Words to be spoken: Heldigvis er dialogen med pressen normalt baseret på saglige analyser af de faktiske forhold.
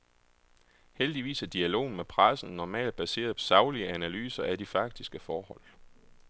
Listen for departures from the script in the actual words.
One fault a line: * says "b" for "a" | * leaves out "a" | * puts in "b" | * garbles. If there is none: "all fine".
* leaves out "på"